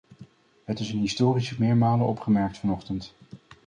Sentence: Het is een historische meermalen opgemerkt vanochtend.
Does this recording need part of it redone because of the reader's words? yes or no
no